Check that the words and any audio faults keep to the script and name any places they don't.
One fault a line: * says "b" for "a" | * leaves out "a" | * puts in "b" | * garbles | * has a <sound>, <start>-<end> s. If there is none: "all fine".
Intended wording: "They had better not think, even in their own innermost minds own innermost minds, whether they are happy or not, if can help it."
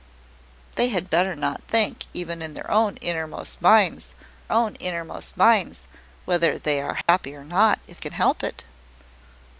* has a dropout, 7.0-7.1 s